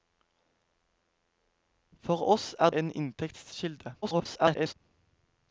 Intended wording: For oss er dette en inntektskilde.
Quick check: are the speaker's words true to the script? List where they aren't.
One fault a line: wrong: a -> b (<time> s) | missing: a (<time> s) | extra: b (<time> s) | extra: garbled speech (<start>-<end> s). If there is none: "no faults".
missing: dette (2.7 s)
extra: garbled speech (4.0-4.7 s)